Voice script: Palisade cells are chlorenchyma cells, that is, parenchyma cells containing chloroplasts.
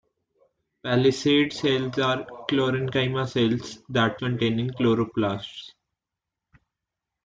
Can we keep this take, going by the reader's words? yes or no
no